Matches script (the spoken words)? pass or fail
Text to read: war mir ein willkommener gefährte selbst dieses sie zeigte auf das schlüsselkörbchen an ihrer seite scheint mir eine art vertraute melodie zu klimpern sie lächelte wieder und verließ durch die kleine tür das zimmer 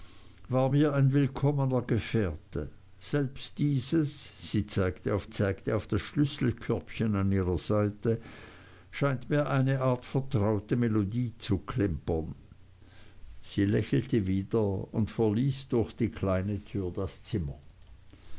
fail